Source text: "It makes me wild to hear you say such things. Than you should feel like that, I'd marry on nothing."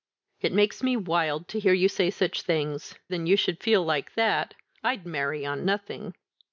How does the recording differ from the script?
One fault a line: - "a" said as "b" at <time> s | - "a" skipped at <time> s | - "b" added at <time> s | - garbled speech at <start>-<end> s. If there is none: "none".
none